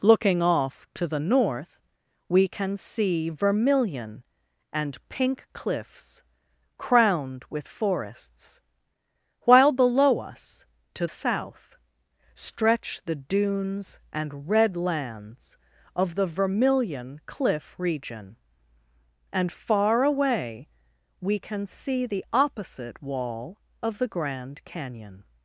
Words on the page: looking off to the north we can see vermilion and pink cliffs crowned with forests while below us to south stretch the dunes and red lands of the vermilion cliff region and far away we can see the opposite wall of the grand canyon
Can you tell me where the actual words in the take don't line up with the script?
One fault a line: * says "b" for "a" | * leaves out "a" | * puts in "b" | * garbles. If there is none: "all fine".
all fine